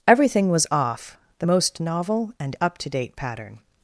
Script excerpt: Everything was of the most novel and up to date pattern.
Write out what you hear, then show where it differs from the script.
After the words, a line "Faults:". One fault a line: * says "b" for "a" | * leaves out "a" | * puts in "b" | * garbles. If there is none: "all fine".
Everything was off the most novel and up to date pattern.
Faults:
* says "off" for "of"